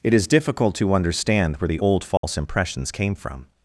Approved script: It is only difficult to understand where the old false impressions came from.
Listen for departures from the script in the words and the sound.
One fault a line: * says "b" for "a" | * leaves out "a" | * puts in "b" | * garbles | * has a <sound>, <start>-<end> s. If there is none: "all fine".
* leaves out "only"
* has a dropout, 2.2-2.2 s